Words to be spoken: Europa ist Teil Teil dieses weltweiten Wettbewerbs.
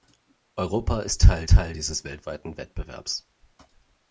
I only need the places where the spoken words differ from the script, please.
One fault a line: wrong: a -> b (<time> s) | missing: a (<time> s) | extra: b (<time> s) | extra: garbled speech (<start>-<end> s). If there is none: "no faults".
no faults